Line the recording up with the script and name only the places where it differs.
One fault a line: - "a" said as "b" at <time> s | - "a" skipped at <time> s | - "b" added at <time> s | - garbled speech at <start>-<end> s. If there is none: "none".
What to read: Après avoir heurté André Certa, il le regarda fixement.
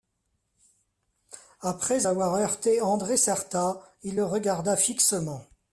none